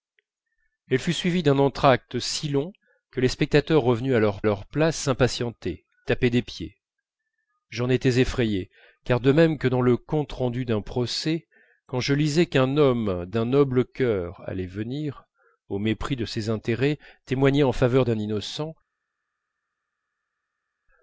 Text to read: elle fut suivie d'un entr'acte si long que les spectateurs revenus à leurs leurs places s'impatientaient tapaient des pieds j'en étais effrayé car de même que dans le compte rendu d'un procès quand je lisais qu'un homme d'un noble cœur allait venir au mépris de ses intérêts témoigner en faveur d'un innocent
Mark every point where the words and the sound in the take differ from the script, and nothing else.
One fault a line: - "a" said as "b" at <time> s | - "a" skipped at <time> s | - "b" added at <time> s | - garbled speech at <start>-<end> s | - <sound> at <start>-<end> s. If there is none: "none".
none